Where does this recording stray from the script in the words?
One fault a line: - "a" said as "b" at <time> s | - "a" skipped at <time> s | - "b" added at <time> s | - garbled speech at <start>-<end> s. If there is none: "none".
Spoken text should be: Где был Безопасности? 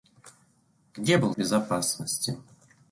none